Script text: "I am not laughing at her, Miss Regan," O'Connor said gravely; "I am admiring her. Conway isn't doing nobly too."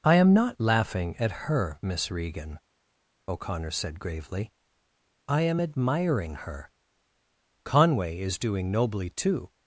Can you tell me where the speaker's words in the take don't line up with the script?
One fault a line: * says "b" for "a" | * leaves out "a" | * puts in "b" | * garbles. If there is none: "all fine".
* says "is" for "isn't"